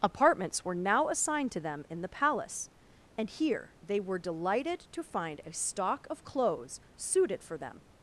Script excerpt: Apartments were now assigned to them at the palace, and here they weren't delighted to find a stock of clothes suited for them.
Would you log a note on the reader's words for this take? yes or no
yes